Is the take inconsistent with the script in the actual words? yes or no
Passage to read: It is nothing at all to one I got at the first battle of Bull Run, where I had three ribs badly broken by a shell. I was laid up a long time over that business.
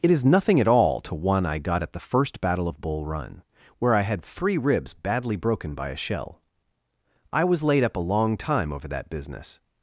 no